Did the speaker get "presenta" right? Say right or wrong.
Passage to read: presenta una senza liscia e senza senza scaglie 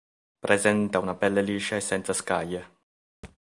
right